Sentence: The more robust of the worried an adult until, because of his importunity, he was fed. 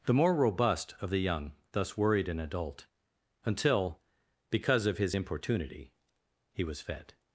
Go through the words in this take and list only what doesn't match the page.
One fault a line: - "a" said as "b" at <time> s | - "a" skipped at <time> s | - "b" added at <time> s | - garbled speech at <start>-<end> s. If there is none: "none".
- "young thus" added at 1.2 s